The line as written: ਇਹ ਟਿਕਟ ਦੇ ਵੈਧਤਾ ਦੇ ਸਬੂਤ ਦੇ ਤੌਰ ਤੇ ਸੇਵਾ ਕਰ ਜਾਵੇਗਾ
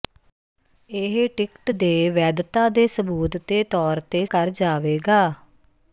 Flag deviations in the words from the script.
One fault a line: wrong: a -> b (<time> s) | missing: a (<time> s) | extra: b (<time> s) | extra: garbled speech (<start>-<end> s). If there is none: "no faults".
missing: ਸੇਵਾ (4.2 s)